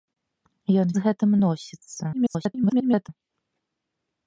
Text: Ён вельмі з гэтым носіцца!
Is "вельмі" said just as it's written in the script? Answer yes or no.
no